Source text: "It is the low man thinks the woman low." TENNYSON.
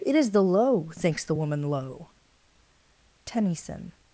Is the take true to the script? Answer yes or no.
no